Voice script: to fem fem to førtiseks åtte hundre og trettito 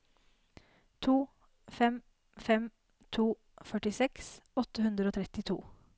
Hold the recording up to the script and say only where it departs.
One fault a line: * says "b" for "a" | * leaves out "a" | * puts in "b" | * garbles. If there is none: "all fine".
all fine